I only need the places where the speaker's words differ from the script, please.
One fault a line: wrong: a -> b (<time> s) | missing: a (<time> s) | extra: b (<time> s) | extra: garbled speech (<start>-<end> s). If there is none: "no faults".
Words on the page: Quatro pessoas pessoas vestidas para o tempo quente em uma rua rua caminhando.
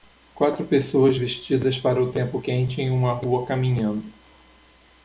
missing: pessoas (1.1 s)
missing: rua (3.5 s)